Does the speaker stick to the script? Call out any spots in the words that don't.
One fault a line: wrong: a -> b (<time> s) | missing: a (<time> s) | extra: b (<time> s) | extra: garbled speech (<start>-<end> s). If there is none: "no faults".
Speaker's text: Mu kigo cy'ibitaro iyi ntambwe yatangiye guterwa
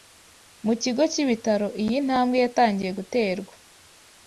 no faults